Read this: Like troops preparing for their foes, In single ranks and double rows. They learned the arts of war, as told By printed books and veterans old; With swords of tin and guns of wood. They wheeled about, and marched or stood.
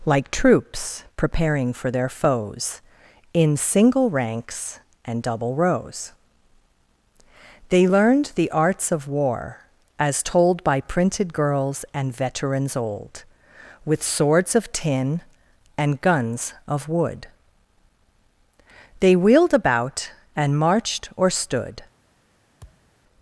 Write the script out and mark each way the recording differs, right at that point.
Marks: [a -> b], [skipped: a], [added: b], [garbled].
Like troops preparing for their foes, In single ranks and double rows. They learned the arts of war, as told By printed [books -> girls] and veterans old; With swords of tin and guns of wood. They wheeled about, and marched or stood.